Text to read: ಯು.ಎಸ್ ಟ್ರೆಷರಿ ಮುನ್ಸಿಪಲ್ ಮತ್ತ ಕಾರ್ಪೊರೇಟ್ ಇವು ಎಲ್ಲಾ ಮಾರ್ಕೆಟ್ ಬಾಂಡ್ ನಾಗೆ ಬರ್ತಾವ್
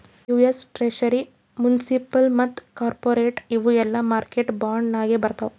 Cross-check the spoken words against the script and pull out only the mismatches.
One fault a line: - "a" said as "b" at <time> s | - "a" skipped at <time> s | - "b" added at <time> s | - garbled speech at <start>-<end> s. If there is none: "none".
none